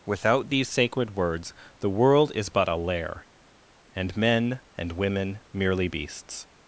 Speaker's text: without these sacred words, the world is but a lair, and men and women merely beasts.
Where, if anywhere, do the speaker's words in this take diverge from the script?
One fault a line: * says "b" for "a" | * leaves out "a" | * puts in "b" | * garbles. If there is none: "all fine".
all fine